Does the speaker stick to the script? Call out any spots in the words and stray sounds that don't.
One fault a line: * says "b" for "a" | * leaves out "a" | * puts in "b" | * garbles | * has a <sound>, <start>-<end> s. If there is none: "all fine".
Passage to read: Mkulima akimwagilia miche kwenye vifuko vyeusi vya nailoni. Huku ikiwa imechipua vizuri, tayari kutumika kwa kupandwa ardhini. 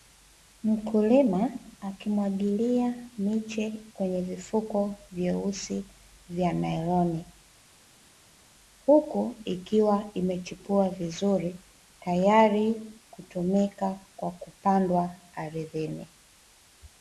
all fine